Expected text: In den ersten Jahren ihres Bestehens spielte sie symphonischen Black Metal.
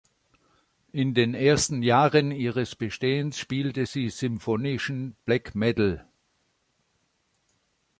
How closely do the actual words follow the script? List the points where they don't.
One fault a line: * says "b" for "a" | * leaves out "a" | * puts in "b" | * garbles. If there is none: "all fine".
all fine